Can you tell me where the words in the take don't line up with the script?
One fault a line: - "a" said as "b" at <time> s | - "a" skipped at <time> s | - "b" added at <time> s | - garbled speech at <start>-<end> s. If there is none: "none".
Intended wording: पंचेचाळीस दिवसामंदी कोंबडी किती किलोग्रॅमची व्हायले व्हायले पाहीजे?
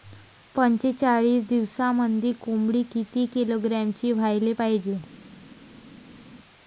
- "व्हायले" skipped at 4.5 s